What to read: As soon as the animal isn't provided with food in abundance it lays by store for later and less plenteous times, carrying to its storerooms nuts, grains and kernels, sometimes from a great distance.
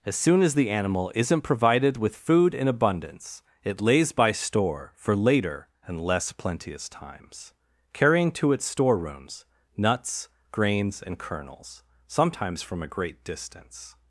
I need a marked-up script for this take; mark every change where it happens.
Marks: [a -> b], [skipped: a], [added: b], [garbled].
As soon as the animal isn't provided with food in abundance it lays by store for later and less plenteous times, carrying to its storerooms nuts, grains and kernels, sometimes from a great distance.